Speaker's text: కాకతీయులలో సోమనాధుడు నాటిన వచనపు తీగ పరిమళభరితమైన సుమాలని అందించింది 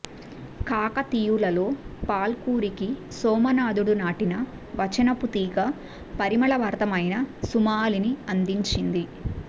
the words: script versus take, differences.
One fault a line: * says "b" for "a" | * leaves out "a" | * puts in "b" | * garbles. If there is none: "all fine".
* puts in "పాల్కురికి"